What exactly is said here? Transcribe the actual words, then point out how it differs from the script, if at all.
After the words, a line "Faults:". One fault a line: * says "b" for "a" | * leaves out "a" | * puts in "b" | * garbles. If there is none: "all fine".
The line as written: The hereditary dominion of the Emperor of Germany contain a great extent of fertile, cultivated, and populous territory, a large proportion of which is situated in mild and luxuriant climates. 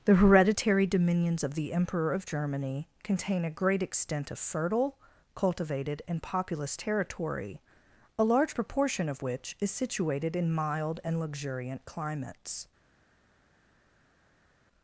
The hereditary dominions of the Emperor of Germany contain a great extent of fertile, cultivated, and populous territory, a large proportion of which is situated in mild and luxuriant climates.
Faults:
* says "dominions" for "dominion"